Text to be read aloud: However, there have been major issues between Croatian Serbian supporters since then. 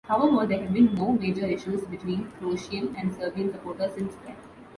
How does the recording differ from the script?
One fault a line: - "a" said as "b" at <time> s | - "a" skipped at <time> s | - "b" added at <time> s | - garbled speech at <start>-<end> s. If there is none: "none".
- "no" added at 0.9 s
- "and" added at 2.9 s